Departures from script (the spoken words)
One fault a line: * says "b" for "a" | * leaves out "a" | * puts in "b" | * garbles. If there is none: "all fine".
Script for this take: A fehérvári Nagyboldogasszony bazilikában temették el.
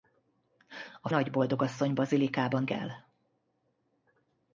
* leaves out "fehérvári"
* leaves out "temették"